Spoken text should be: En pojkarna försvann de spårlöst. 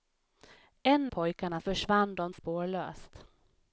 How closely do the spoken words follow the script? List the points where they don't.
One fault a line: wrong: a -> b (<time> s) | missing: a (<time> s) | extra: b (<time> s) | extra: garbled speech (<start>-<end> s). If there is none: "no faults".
no faults